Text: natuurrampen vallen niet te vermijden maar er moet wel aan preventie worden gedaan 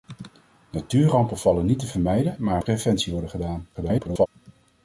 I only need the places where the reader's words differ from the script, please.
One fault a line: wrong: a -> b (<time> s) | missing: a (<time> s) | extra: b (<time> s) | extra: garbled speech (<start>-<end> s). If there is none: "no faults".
missing: moet wel aan (2.6 s)
extra: garbled speech (3.7-4.3 s)